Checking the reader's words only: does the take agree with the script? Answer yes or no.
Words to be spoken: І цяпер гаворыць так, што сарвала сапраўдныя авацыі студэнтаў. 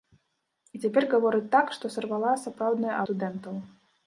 no